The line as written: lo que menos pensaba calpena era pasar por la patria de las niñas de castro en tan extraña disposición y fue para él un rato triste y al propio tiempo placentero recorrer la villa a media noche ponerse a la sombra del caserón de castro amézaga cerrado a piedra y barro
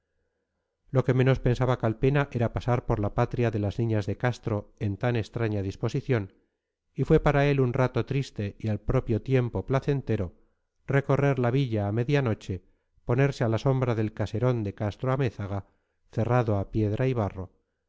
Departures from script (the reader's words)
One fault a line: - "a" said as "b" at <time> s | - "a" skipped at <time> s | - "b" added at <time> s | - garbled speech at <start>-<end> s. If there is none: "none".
none